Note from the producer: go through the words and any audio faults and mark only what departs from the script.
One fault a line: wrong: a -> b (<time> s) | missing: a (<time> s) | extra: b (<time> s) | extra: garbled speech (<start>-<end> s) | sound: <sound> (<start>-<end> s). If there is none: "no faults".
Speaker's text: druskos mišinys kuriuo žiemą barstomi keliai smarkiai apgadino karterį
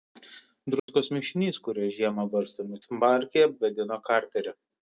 sound: dropout (0.8-0.9 s)
missing: keliai (2.8 s)